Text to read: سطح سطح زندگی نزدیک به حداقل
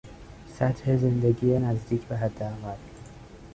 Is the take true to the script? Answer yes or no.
no